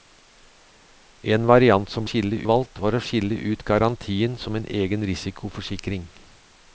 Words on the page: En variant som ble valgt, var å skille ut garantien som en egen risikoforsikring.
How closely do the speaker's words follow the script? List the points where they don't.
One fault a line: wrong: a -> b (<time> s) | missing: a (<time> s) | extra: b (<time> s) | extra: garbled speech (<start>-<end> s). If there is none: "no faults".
wrong: ble -> skille (2.1 s)